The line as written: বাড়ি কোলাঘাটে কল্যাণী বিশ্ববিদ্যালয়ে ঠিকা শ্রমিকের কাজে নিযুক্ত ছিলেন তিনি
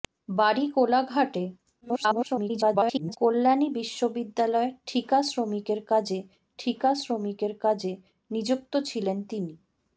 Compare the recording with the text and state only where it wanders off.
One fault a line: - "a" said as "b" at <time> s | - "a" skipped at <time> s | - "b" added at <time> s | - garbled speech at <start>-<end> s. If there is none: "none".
- garbled speech at 1.8-3.2 s
- "ঠিকা শ্রমিকের কাজে" added at 6.6 s